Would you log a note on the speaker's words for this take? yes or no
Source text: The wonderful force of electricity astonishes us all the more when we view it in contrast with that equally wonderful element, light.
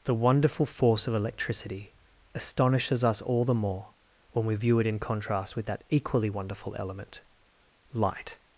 no